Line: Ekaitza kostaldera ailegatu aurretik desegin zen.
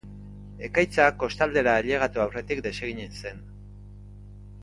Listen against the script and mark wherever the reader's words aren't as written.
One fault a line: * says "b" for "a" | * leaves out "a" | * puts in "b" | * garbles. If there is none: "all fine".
all fine